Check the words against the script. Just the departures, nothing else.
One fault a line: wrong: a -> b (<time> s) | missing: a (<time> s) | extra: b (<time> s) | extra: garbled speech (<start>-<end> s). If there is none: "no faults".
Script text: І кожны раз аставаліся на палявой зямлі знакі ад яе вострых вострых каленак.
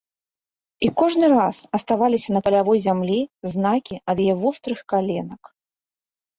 missing: вострых (4.8 s)